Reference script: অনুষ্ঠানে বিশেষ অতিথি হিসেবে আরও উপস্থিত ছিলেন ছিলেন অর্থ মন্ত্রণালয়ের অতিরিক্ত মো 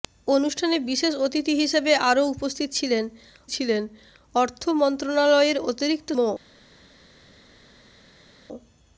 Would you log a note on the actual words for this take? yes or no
no